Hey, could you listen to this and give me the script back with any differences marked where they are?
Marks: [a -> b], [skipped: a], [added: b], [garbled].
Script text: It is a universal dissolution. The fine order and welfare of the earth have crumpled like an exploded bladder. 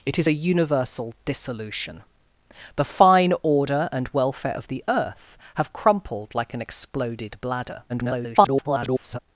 It is a universal dissolution. The fine order and welfare of the earth have crumpled like an exploded bladder. [garbled]